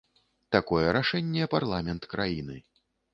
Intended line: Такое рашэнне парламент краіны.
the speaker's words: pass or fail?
pass